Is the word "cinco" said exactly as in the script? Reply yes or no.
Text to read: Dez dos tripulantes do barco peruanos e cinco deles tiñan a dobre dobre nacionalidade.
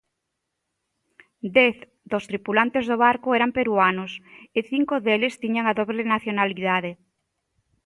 yes